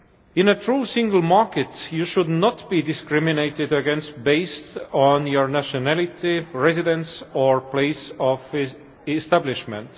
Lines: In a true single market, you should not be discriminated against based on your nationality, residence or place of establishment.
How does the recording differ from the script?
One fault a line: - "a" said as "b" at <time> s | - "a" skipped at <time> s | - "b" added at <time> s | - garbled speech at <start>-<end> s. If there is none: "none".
none